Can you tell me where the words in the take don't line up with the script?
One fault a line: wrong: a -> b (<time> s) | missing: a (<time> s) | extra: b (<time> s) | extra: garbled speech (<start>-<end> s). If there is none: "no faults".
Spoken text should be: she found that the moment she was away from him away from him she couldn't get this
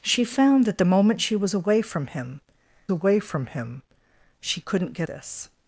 no faults